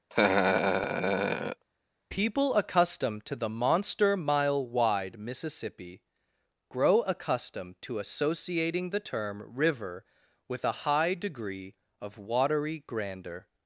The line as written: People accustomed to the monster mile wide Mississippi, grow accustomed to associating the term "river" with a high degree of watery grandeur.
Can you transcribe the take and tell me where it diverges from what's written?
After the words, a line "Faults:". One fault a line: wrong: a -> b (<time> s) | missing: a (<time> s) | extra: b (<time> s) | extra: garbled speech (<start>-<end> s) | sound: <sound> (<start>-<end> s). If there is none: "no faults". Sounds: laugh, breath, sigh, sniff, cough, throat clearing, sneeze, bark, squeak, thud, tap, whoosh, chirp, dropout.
People accustomed to the monster mile wide Mississippi, grow accustomed to associating the term "river" with a high degree of watery grandeur.
Faults:
sound: laugh (0.1-1.6 s)